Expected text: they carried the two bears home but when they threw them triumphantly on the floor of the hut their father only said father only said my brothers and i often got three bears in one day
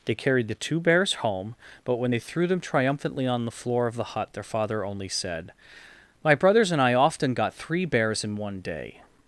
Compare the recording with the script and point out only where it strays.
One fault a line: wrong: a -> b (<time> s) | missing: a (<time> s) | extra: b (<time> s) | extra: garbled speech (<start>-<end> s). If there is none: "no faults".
missing: father only said (5.5 s)